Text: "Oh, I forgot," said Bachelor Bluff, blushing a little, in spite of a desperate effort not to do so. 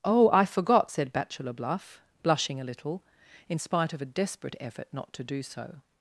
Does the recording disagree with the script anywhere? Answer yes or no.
no